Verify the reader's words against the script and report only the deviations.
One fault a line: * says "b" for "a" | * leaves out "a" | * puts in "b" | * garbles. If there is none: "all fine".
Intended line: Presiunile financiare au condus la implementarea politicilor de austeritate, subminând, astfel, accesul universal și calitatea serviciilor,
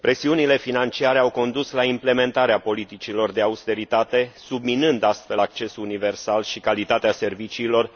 all fine